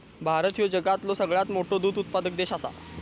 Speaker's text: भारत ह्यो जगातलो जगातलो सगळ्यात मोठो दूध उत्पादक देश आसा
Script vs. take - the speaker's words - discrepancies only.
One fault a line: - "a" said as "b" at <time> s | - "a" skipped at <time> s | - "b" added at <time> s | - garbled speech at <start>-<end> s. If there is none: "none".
- "जगातलो" skipped at 1.1 s